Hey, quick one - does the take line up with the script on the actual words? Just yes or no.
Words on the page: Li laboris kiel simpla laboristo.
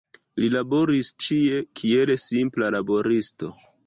no